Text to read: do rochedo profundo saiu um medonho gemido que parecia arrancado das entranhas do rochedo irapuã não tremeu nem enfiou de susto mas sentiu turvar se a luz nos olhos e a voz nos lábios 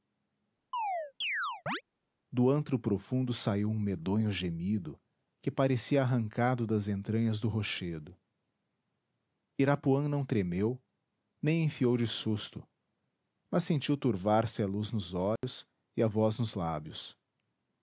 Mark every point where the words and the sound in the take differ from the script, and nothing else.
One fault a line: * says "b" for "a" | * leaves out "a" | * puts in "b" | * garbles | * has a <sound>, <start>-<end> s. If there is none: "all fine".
* has a chirp, 0.7-1.8 s
* says "antro" for "rochedo"
* has a dropout, 15.4-15.4 s